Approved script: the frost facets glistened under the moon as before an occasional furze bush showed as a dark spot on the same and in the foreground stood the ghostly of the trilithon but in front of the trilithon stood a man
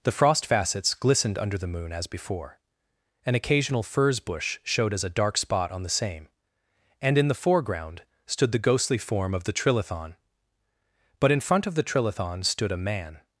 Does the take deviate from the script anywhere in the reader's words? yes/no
yes